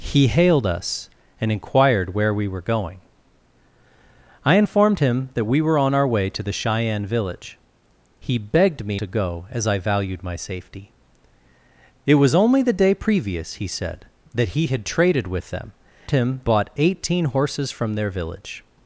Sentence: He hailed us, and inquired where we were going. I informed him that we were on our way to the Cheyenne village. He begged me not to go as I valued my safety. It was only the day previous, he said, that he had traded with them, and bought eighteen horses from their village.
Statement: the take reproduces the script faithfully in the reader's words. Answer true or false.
false